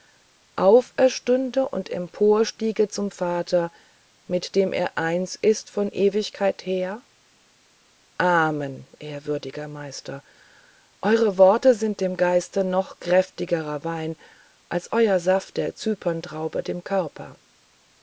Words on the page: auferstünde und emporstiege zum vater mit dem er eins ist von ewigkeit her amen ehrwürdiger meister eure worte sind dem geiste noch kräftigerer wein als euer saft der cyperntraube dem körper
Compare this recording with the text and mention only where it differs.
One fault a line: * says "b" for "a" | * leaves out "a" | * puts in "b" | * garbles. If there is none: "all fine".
all fine